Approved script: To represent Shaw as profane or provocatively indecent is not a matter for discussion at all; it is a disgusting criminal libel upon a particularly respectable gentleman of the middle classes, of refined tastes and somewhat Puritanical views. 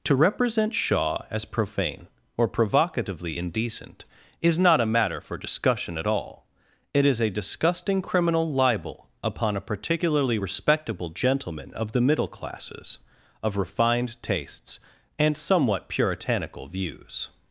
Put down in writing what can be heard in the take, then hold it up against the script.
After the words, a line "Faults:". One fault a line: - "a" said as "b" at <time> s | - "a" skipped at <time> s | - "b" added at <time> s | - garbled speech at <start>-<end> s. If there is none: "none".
To represent Shaw as profane or provocatively indecent is not a matter for discussion at all; it is a disgusting criminal libel upon a particularly respectable gentleman of the middle classes, of refined tastes and somewhat Puritanical views.
Faults:
none